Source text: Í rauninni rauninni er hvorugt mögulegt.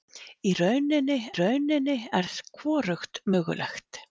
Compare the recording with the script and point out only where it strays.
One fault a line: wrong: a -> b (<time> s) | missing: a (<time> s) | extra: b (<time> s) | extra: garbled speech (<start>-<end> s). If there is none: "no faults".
no faults